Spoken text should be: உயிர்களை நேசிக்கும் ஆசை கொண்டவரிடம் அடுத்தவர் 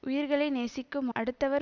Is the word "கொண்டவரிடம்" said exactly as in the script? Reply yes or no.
no